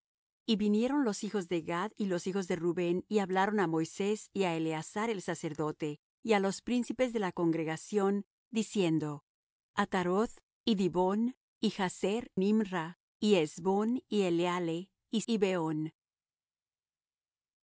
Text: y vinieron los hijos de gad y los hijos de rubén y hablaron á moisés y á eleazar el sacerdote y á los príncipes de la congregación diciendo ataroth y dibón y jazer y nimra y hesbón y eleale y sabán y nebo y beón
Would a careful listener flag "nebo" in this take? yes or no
yes